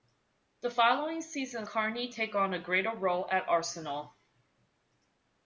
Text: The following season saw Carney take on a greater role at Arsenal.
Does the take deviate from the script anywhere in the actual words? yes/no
yes